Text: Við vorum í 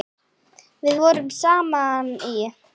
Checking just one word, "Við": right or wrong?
right